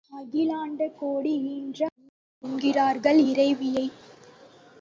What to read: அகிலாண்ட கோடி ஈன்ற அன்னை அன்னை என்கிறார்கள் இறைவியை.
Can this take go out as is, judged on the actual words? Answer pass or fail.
fail